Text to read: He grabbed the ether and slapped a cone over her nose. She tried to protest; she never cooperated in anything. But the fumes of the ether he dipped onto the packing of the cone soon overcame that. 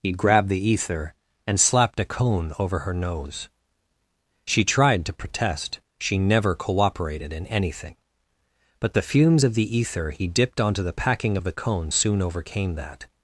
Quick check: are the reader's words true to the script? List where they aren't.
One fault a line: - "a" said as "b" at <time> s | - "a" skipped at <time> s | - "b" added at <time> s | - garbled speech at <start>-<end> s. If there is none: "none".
none